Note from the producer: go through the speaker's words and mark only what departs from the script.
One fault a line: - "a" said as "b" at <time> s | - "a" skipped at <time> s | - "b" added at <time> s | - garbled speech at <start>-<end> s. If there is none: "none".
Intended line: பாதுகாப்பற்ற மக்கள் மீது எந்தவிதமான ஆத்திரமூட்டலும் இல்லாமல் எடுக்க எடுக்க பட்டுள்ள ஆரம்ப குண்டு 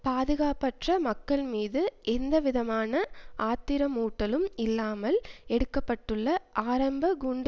- "எடுக்க" skipped at 5.8 s